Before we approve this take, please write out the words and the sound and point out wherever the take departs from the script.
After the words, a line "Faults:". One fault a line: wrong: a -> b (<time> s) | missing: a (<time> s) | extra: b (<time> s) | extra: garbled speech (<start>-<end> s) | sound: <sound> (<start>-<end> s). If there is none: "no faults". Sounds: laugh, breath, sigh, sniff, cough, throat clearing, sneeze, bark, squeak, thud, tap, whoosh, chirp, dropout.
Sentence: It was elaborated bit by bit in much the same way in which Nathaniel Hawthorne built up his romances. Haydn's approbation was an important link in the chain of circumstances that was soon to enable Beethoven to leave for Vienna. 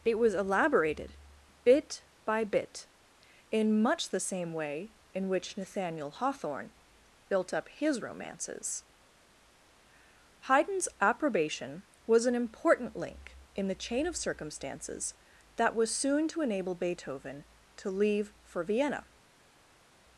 It was elaborated bit by bit in much the same way in which Nathaniel Hawthorne built up his romances. Haydn's approbation was an important link in the chain of circumstances that was soon to enable Beethoven to leave for Vienna.
Faults:
no faults